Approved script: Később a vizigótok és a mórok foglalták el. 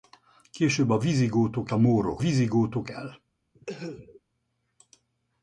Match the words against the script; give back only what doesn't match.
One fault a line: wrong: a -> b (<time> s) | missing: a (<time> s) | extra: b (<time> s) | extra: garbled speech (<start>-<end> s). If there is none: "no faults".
missing: és (1.7 s)
wrong: foglalták -> vizigótok (2.2 s)